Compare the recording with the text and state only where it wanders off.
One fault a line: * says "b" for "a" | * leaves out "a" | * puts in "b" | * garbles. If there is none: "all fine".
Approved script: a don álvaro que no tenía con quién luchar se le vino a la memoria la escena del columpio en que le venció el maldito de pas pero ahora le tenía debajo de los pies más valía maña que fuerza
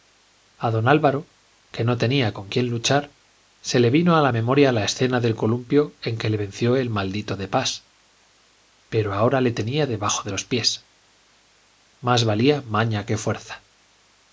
all fine